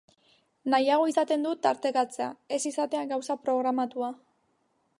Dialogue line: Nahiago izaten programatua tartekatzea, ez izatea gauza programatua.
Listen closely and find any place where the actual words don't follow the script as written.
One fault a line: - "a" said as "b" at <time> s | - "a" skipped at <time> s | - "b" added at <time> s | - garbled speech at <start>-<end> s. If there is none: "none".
- "programatua" said as "dut" at 1.5 s